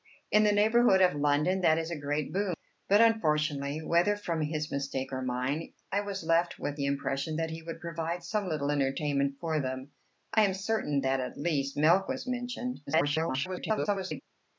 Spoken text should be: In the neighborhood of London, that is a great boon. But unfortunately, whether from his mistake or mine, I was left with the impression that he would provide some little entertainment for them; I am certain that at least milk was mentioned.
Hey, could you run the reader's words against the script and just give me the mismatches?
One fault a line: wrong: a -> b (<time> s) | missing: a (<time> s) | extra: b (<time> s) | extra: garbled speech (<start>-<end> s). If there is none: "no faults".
extra: garbled speech (12.9-14.2 s)